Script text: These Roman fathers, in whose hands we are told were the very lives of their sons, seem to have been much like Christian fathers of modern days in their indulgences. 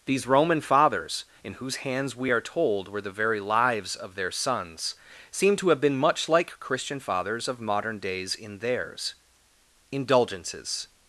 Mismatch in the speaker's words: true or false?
true